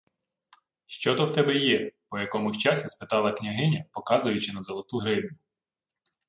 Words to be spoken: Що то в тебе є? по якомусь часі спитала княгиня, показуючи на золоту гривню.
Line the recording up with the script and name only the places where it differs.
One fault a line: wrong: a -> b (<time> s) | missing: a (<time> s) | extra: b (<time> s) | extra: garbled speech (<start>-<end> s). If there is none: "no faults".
no faults